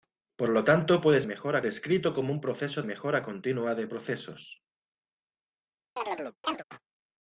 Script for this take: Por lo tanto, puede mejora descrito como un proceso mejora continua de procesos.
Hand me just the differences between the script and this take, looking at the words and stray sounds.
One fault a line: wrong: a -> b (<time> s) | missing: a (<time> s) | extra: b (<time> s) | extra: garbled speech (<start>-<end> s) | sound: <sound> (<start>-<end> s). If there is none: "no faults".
sound: chirp (6.0-6.6 s)